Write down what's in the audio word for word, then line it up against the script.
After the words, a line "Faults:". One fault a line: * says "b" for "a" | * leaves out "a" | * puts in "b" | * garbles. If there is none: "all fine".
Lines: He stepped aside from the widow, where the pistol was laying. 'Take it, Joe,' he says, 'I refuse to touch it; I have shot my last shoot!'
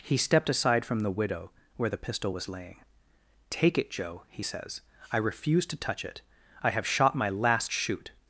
He stepped aside from the widow, where the pistol was laying. 'Take it, Joe,' he says, 'I refuse to touch it; I have shot my last shoot!'
Faults:
all fine